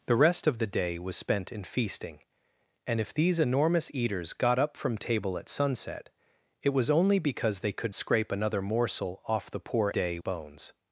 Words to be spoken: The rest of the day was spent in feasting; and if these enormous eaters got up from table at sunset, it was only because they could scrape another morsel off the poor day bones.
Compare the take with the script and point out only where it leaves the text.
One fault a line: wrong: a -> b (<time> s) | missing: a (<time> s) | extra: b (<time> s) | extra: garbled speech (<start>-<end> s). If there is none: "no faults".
no faults